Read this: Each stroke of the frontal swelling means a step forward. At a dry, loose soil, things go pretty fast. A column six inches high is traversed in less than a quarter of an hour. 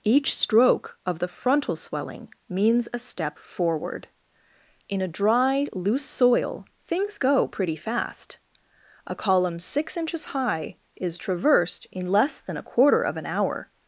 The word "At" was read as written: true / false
false